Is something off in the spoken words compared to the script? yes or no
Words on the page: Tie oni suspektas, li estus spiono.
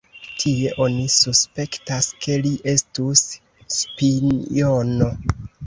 yes